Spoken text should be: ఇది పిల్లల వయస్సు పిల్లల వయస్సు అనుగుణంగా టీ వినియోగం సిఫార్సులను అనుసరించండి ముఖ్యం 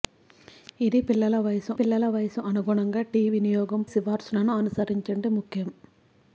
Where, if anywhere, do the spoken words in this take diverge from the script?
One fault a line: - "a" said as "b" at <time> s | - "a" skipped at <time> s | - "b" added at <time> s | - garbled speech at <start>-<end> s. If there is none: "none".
none